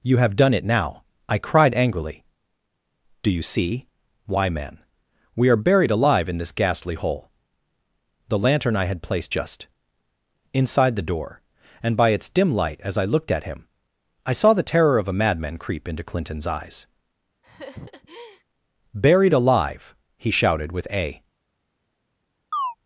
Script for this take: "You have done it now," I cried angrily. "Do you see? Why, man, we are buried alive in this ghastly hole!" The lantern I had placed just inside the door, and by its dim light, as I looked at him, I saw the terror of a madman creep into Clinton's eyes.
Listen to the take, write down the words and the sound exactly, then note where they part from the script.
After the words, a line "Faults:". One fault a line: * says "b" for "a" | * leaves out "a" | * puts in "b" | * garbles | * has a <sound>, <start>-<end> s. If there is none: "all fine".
"You have done it now," I cried angrily. "Do you see? Why, man, we are buried alive in this ghastly hole!" The lantern I had placed just inside the door, and by its dim light, as I looked at him, I saw the terror of a madman creep into Clinton's eyes. "Buried alive!" he shouted, with a
Faults:
* has a laugh, 17.4-18.4 s
* puts in "Buried alive he shouted with a"
* has a chirp, 22.5-22.8 s